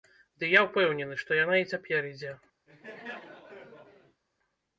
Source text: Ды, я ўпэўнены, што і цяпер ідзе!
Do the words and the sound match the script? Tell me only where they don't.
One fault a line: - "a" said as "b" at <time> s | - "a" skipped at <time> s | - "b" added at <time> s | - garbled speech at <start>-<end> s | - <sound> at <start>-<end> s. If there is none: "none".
- "яна" added at 1.4 s
- laugh at 2.7-4.2 s